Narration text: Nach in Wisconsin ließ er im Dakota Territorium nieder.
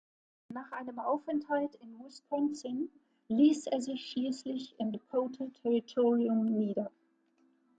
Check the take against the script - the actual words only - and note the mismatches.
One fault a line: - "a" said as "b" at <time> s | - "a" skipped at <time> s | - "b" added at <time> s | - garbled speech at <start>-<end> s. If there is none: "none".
- "einem Aufenthalt" added at 0.7 s
- "sich schließlich" added at 3.8 s